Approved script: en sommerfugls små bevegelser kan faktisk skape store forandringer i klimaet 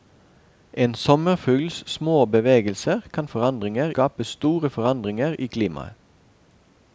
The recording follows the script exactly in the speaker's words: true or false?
false